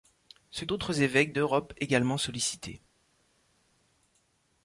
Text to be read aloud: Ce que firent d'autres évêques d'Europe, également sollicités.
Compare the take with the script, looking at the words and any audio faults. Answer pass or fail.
fail